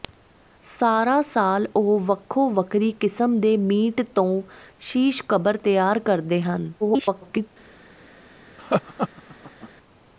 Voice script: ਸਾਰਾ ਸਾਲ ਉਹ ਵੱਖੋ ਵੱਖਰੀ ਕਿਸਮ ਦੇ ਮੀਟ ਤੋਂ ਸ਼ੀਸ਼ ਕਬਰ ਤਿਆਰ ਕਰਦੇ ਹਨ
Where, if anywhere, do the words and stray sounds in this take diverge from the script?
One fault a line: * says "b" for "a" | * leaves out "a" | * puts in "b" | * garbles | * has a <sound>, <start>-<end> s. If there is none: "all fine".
* garbles
* has a laugh, 8.6-9.7 s